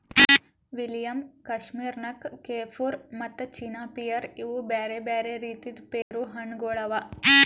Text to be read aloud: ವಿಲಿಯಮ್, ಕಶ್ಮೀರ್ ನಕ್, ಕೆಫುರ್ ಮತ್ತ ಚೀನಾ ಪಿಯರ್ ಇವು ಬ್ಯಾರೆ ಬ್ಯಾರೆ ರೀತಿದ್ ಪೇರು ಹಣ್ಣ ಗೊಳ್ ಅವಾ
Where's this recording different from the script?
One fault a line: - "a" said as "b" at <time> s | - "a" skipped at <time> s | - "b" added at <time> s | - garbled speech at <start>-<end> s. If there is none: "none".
none